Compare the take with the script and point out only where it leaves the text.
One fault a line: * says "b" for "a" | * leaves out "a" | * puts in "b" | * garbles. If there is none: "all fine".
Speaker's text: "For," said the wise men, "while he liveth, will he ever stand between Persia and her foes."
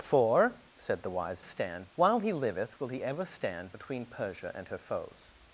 * says "stand" for "men"